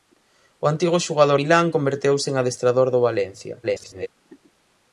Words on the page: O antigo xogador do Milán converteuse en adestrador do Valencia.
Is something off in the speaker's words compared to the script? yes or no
yes